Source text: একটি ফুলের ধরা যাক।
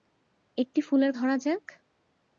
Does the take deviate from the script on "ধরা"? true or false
false